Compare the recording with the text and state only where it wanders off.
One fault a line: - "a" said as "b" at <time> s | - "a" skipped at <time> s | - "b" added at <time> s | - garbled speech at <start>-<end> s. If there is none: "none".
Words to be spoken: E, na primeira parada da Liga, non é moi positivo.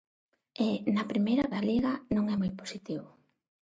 - "parada" skipped at 1.5 s